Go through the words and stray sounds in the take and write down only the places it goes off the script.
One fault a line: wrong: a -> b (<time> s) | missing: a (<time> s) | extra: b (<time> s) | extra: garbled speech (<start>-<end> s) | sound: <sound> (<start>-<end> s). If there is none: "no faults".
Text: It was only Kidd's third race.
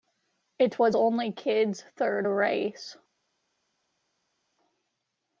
no faults